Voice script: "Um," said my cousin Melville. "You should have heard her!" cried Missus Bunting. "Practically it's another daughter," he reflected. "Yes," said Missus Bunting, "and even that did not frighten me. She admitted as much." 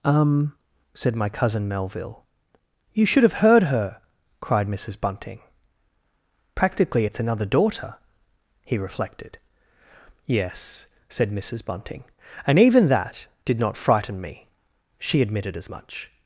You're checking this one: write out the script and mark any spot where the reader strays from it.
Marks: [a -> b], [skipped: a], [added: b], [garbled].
"Um," said my cousin Melville. "You should have heard her!" cried Missus Bunting. "Practically it's another daughter," he reflected. "Yes," said Missus Bunting, "and even that did not frighten me. She admitted as much."